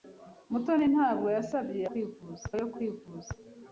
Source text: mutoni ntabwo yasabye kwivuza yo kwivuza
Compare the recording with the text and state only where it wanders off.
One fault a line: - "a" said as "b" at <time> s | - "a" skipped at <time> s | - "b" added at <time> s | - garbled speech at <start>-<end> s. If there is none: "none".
none